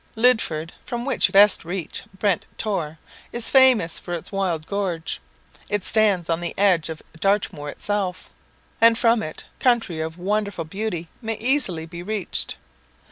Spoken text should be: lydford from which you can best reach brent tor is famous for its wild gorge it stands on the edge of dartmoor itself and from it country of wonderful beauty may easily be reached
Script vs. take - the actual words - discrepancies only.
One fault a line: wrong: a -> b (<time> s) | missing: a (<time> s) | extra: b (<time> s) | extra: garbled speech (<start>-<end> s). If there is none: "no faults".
missing: can (1.3 s)